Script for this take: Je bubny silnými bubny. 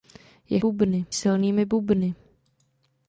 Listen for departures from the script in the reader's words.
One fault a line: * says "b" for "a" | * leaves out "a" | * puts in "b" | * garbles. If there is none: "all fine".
all fine